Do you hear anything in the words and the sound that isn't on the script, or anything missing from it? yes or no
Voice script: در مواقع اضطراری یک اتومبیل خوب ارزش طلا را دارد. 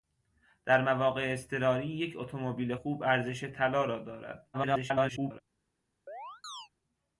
yes